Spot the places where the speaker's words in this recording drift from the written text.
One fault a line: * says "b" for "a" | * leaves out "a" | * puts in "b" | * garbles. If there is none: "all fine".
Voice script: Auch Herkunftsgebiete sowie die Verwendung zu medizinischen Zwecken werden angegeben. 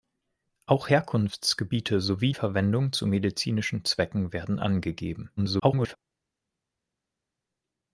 * leaves out "die"
* garbles